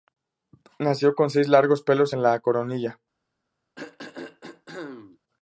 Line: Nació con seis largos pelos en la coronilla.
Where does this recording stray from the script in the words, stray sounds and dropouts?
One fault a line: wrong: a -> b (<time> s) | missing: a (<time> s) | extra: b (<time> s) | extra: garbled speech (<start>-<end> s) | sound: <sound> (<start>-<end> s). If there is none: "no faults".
sound: throat clearing (3.7-5.2 s)